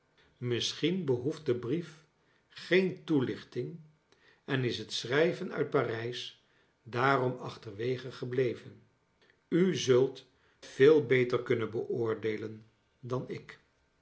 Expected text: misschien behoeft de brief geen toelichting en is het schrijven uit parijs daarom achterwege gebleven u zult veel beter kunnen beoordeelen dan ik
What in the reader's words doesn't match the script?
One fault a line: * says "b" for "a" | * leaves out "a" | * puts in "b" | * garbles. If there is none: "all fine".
all fine